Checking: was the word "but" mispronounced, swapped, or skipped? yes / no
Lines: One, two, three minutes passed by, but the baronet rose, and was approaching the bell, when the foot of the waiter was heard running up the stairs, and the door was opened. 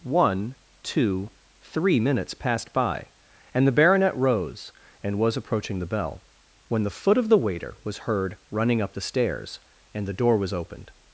yes